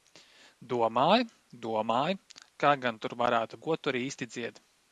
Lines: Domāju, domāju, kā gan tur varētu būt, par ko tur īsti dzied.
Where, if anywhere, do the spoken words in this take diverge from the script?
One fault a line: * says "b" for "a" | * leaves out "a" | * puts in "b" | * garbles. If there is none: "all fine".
* leaves out "būt par"